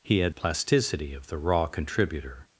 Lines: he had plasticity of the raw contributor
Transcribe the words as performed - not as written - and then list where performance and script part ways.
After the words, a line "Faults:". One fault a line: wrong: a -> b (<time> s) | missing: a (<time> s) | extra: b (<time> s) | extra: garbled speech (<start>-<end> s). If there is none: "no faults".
he had plasticity of the raw contributor
Faults:
no faults